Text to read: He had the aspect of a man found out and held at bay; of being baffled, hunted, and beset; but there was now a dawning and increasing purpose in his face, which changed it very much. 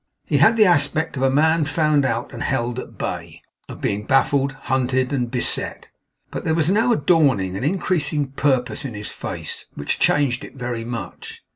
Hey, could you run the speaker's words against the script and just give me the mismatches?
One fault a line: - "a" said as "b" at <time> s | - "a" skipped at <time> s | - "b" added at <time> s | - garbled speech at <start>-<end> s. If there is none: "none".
none